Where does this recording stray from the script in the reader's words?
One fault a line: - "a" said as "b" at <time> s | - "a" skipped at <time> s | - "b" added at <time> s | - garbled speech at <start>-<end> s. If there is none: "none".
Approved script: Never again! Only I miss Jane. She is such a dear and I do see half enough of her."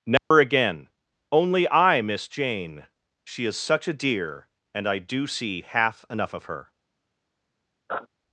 none